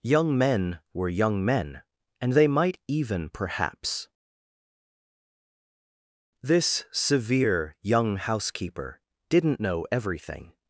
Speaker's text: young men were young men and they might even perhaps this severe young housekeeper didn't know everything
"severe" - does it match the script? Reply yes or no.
yes